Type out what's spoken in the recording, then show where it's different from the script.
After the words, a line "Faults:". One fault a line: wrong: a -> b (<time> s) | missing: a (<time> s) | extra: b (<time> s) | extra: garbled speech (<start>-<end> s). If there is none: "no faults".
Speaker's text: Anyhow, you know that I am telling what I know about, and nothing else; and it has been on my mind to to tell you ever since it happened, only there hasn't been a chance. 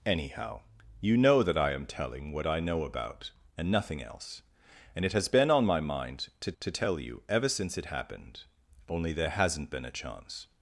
Anyhow, you know that I am telling what I know about, and nothing else; and it has been on my mind to to tell you ever since it happened, only there hasn't been a chance.
Faults:
no faults